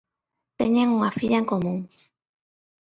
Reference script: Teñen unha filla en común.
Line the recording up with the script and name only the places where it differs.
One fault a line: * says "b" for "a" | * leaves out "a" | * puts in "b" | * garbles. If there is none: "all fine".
all fine